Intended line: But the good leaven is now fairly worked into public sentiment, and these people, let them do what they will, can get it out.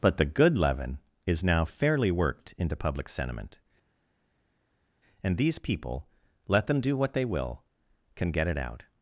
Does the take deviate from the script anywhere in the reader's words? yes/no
no